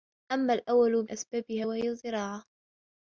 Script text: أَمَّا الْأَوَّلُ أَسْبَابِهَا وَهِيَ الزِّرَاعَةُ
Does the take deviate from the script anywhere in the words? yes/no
no